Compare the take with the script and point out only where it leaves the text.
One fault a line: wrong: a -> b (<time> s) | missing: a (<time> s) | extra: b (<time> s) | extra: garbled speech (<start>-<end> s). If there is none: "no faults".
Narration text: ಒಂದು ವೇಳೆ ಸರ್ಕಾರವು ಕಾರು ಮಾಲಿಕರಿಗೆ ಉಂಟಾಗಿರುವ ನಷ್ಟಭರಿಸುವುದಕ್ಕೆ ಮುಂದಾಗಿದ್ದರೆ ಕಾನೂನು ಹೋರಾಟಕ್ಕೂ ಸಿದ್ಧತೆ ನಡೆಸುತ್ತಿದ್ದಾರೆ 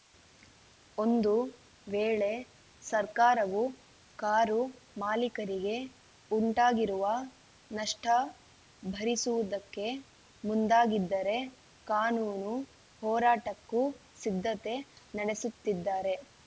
no faults